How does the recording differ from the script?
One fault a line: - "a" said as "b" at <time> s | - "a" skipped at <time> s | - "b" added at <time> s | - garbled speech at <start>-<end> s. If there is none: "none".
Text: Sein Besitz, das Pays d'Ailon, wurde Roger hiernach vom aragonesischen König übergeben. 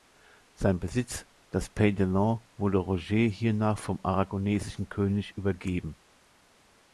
none